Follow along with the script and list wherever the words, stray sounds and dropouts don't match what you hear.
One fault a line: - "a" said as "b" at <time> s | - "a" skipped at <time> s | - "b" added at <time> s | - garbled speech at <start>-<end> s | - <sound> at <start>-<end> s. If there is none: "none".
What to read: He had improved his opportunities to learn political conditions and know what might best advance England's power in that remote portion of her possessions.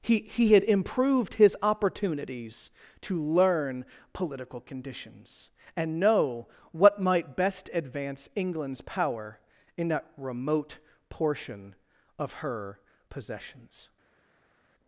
- "he" added at 0.2 s